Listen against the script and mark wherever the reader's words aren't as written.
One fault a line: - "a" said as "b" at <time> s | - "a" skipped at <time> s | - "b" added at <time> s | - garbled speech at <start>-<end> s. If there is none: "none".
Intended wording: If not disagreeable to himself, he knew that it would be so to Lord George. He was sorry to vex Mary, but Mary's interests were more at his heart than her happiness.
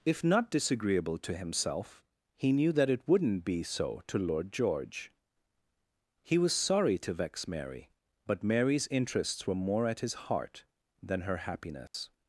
- "would" said as "wouldn't" at 3.1 s